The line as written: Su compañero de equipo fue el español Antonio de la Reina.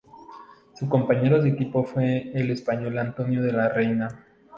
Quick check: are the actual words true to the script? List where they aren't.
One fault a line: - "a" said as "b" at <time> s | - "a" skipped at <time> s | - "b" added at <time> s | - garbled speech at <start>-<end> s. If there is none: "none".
none